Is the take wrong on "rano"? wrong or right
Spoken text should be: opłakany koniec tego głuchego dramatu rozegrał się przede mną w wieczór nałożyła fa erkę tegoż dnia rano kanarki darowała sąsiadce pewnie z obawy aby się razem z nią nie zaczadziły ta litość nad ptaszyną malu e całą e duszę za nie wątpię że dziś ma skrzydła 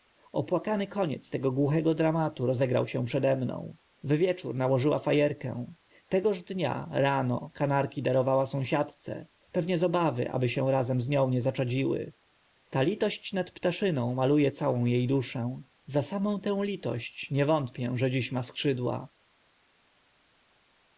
right